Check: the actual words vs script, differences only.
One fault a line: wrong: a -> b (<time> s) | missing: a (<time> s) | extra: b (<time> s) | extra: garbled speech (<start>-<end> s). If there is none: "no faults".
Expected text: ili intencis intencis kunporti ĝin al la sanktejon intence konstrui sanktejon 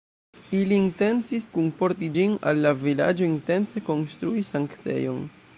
missing: intencis (1.4 s)
wrong: sanktejon -> vilaĝo (2.9 s)